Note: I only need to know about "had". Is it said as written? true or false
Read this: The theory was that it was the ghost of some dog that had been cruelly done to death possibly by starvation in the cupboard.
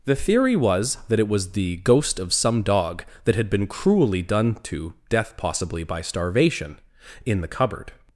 true